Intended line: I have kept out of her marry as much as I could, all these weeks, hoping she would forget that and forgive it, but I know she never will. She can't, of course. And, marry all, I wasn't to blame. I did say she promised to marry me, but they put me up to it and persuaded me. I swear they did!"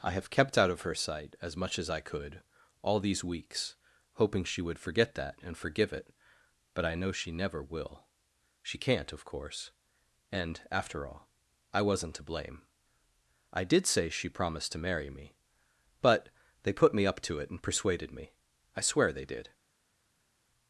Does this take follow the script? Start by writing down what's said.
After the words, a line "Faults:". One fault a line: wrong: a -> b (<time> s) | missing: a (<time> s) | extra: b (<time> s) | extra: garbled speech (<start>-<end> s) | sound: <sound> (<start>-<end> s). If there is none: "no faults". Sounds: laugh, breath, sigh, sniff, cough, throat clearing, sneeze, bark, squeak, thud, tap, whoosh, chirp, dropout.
I have kept out of her sight as much as I could, all these weeks, hoping she would forget that and forgive it, but I know she never will. She can't, of course. And, after all, I wasn't to blame. I did say she promised to marry me, but they put me up to it and persuaded me. I swear they did!"
Faults:
wrong: marry -> sight (0.9 s)
wrong: marry -> after (10.7 s)